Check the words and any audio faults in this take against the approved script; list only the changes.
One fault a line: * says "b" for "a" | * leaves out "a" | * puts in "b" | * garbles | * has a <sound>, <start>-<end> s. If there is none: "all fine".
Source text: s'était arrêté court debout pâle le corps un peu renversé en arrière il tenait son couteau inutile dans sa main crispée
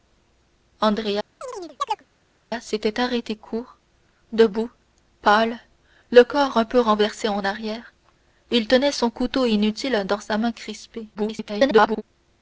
* has a chirp, 1.4-2.1 s
* garbles